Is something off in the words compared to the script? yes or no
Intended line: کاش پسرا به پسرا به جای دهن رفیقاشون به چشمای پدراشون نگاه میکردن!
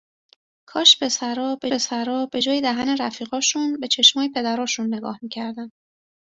no